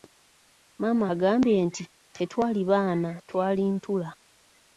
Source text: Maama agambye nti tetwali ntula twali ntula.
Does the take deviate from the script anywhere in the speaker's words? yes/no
yes